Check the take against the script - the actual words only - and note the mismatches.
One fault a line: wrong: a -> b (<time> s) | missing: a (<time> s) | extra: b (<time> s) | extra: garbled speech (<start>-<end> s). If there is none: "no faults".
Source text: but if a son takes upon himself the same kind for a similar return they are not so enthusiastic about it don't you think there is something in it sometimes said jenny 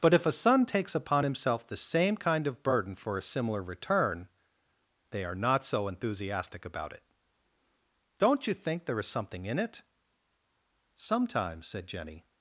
extra: of burden (2.5 s)